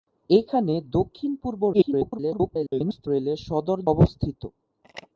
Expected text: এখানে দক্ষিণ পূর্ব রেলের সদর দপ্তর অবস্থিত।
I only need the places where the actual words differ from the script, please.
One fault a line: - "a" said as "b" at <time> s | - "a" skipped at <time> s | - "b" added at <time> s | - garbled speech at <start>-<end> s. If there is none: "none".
- garbled speech at 1.7-3.1 s
- "দপ্তর" skipped at 3.8 s